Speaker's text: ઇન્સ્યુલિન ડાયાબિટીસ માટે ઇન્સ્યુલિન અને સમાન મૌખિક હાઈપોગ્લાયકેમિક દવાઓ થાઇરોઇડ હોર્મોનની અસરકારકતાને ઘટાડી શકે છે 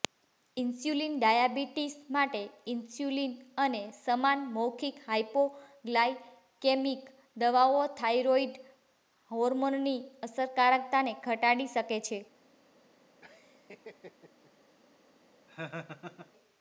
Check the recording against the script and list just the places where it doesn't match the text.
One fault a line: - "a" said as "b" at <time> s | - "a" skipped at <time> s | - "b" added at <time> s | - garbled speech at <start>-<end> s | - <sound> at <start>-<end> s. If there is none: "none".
- laugh at 13.2-14.5 s
- laugh at 15.5-16.3 s